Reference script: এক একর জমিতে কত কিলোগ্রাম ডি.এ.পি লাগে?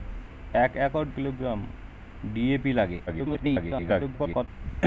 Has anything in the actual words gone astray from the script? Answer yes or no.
yes